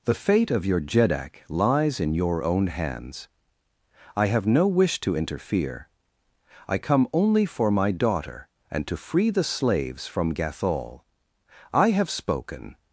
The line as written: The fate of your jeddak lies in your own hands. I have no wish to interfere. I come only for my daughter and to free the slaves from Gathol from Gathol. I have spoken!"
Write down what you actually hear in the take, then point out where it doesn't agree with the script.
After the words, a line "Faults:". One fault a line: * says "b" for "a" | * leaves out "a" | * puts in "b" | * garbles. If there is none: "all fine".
The fate of your jeddak lies in your own hands. I have no wish to interfere. I come only for my daughter and to free the slaves from Gathol. I have spoken!"
Faults:
* leaves out "from Gathol"